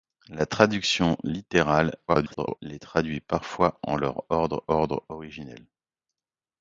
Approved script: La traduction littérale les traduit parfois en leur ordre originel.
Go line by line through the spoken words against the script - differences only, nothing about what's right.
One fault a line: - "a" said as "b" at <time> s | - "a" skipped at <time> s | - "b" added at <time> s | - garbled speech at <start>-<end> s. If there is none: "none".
- garbled speech at 2.1-2.6 s
- "ordre" added at 4.7 s